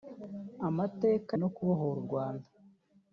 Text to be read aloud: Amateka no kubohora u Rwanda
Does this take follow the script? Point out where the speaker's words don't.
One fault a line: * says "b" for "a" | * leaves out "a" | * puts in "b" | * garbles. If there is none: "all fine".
all fine